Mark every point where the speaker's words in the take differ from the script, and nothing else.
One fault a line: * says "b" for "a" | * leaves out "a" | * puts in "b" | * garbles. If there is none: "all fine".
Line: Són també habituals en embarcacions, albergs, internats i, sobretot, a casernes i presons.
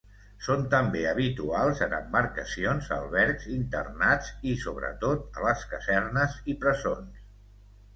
* puts in "les"